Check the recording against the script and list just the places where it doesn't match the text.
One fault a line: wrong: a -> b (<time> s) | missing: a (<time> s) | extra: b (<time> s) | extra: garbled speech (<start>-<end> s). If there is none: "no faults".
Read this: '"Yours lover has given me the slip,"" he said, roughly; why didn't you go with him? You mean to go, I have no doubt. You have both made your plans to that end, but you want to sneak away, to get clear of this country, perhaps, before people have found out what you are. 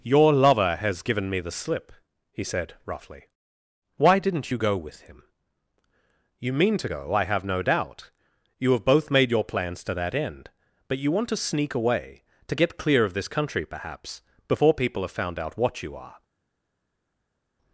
wrong: Yours -> Your (0.0 s)